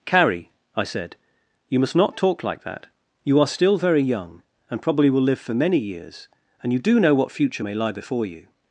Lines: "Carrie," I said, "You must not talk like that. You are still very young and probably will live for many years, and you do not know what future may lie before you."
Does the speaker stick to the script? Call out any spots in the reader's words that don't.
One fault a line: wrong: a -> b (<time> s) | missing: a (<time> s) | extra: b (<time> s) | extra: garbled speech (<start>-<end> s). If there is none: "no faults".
missing: not (7.0 s)